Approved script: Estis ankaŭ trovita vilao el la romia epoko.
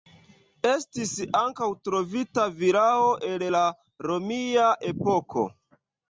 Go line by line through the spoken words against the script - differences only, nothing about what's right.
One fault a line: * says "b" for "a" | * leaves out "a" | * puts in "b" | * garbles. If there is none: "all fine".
all fine